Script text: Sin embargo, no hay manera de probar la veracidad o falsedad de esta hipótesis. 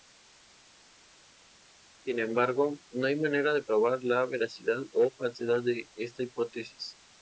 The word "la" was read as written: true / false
true